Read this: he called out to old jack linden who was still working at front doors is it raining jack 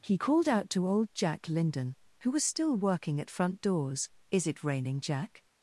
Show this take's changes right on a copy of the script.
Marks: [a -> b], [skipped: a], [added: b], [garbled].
he called out to old jack linden who was still working at front doors is it raining jack